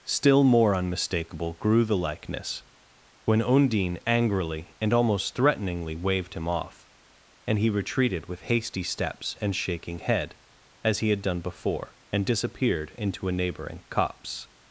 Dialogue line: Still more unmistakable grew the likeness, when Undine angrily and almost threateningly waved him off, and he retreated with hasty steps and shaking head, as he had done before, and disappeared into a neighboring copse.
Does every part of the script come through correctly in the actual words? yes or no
yes